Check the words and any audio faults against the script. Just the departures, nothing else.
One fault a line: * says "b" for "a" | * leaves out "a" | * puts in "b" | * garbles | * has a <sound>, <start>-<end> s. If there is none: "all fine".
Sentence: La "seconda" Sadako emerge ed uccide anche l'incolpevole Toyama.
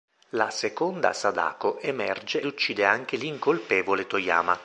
* leaves out "ed"